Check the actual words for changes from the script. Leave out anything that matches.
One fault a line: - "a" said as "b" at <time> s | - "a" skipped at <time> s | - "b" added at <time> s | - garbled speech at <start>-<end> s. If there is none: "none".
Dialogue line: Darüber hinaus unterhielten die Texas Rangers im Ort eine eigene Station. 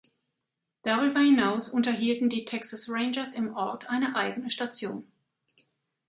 none